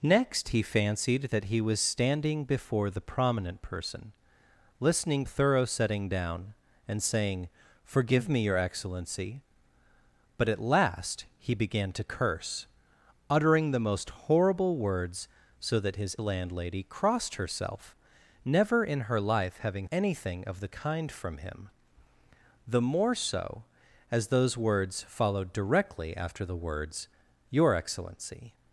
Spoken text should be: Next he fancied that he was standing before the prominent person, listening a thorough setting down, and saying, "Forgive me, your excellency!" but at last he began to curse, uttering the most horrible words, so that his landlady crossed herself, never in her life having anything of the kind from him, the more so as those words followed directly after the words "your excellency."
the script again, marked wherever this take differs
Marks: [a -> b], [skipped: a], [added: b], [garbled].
Next he fancied that he was standing before the prominent person, listening a thorough setting down, and saying, "Forgive me, your excellency!" but at last he began to curse, uttering the most horrible words, so that his landlady crossed herself, never in her life having anything of the kind from him, the more so as those words followed directly after the words "your excellency."